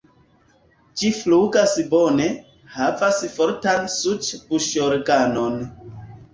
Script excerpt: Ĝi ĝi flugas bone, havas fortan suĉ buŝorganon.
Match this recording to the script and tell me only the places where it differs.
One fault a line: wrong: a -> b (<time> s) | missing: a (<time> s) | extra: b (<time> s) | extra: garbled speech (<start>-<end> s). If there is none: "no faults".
missing: ĝi (1.1 s)